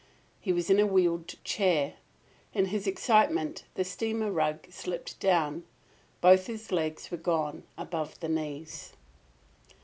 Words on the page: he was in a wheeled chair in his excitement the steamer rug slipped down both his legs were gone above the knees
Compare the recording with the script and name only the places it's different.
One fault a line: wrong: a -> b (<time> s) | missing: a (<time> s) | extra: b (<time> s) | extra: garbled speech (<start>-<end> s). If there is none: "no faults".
no faults